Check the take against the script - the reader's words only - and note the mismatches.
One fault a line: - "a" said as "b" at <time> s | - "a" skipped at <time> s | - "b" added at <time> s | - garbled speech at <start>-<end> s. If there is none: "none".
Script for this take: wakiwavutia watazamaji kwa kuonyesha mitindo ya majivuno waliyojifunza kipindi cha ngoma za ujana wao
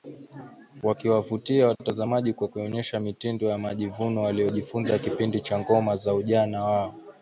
none